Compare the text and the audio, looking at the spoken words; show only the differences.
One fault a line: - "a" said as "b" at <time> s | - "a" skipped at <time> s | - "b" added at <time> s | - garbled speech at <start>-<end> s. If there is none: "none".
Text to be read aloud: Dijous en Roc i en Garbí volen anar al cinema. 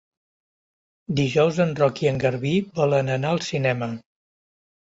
none